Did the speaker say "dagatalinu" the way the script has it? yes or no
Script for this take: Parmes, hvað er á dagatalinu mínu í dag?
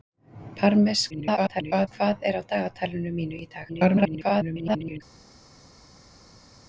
yes